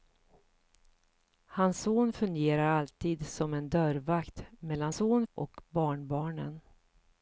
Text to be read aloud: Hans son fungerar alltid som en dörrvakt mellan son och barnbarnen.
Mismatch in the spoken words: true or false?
false